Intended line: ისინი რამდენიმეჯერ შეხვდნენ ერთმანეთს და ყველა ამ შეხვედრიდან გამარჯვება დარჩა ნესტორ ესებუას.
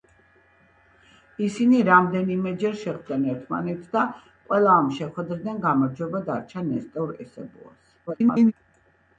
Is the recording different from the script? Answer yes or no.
yes